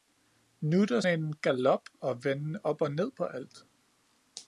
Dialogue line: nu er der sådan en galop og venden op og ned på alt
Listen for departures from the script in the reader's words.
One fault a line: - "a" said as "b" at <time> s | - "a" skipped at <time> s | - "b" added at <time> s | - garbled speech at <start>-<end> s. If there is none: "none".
- "sådan" skipped at 1.0 s